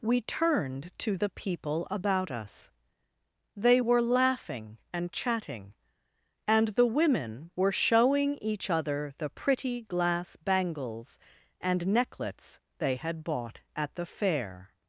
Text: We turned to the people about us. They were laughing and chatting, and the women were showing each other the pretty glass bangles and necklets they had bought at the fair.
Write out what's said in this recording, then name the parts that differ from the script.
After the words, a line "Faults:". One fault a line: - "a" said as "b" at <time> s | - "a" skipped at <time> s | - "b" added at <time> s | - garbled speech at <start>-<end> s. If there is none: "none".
We turned to the people about us. They were laughing and chatting, and the women were showing each other the pretty glass bangles and necklets they had bought at the fair.
Faults:
none